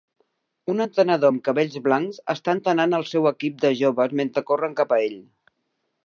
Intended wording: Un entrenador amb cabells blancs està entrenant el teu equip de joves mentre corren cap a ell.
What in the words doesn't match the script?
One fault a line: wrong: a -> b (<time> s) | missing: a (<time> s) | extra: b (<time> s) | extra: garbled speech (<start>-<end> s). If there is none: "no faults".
wrong: teu -> seu (3.1 s)